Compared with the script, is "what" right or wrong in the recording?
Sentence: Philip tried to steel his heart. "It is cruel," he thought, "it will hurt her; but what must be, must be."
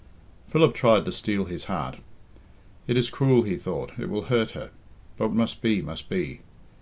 wrong